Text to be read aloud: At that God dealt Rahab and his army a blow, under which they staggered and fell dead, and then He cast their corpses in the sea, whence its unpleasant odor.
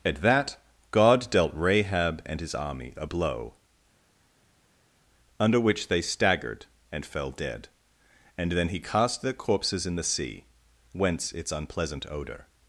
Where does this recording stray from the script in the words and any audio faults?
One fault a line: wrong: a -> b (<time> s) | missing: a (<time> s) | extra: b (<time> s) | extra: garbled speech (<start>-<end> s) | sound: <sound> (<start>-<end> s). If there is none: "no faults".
no faults